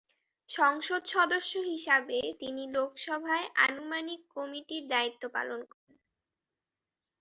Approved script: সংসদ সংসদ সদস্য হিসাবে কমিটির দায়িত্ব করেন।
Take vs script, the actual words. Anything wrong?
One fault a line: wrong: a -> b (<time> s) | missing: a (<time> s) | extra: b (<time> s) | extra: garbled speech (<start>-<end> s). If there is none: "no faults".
missing: সংসদ (1.0 s)
extra: তিনি লোকসভায় আনুমানিক (2.4 s)
extra: পালন (5.3 s)